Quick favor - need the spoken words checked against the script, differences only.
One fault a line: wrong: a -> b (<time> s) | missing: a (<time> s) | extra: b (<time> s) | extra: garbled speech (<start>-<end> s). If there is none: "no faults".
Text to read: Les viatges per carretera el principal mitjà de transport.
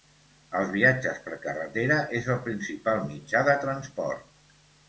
wrong: Les -> Els (0.6 s)
extra: és (2.2 s)